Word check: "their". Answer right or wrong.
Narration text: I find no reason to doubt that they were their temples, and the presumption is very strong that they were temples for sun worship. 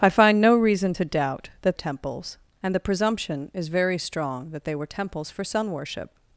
wrong